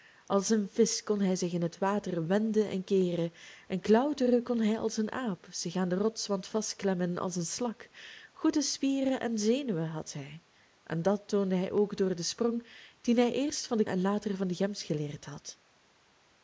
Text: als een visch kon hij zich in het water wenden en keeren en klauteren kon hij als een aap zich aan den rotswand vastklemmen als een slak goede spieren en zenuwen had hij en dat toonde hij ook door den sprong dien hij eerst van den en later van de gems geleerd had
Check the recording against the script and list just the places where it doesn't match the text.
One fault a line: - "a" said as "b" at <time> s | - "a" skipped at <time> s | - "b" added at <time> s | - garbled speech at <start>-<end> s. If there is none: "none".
none